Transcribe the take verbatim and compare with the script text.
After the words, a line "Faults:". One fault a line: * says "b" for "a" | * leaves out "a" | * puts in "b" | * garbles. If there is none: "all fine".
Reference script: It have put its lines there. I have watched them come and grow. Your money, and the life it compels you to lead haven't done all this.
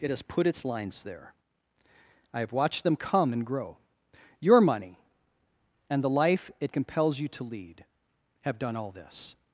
It has put its lines there. I have watched them come and grow. Your money, and the life it compels you to lead have done all this.
Faults:
* says "has" for "have"
* says "have" for "haven't"